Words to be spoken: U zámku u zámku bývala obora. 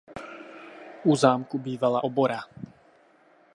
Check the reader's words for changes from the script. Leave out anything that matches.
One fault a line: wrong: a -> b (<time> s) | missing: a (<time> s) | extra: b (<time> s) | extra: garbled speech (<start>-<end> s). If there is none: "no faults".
missing: u zámku (1.6 s)